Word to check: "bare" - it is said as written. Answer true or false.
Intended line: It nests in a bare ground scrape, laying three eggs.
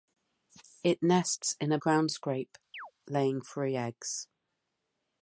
false